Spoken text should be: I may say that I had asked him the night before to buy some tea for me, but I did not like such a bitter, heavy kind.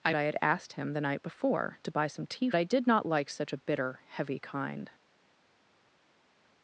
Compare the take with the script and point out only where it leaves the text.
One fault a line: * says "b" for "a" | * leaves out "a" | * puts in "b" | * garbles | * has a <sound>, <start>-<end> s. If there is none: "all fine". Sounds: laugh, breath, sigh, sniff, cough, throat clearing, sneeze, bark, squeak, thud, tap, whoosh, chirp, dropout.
* leaves out "may say that"
* leaves out "for me but"